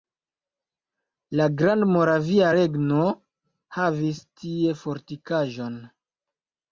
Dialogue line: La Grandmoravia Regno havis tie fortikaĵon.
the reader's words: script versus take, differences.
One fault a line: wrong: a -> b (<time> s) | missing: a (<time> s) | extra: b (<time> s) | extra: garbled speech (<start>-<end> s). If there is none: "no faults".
no faults